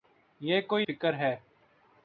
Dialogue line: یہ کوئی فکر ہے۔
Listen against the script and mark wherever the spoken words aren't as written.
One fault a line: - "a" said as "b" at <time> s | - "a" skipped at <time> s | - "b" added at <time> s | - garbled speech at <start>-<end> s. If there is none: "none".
none